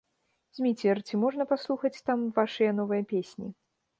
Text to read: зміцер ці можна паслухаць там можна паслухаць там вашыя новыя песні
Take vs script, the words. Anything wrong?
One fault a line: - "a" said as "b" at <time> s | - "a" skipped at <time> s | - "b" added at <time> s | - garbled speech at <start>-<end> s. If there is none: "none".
- "можна паслухаць там" skipped at 2.2 s